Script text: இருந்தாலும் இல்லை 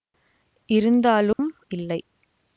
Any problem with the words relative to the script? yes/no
no